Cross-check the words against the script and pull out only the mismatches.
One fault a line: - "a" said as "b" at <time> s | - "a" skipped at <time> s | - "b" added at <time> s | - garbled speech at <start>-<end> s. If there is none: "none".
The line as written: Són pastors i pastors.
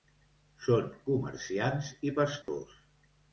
- "pastors" said as "comerciants" at 1.1 s